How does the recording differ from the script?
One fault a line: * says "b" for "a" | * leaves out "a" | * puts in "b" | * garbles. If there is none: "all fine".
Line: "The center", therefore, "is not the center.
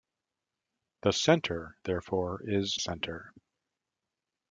* leaves out "not the"